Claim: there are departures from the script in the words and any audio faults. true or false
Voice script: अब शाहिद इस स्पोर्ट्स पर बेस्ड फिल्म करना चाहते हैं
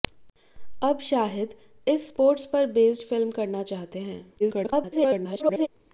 true